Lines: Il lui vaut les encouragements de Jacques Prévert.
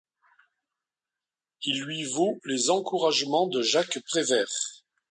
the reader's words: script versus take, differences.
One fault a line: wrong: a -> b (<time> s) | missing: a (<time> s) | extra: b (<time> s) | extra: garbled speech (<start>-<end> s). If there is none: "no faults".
no faults